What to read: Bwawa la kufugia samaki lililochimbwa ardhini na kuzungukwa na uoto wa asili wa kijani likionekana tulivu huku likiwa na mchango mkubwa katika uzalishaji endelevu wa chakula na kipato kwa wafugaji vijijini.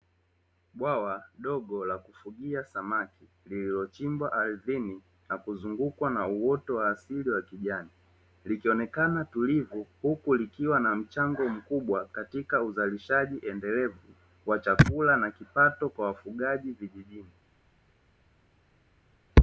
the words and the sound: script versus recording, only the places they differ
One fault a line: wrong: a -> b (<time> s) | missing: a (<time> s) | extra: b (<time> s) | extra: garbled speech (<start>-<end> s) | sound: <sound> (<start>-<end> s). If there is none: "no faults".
extra: dogo (1.4 s)